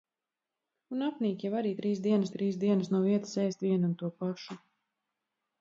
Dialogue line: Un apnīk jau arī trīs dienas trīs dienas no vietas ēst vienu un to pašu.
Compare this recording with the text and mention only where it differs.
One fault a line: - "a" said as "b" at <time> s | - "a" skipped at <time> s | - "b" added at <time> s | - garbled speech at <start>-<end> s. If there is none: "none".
none